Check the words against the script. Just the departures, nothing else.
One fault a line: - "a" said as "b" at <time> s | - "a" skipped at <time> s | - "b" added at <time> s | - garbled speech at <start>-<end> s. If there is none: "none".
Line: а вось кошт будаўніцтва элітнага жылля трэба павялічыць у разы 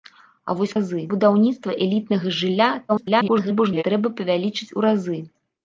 - "кошт" said as "разы" at 0.7 s
- garbled speech at 2.9-3.8 s